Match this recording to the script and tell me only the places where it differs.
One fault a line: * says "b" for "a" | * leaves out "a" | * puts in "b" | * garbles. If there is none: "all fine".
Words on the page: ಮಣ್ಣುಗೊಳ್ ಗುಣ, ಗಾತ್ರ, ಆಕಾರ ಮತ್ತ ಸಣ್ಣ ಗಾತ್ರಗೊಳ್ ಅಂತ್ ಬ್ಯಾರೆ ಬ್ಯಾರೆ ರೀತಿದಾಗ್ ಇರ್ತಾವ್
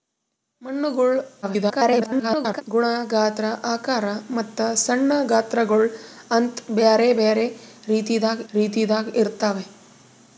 * garbles
* puts in "ರೀತಿದಾಗ್"